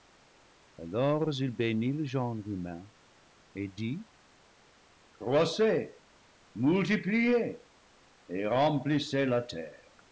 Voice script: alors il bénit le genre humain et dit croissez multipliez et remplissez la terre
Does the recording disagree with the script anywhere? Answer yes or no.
no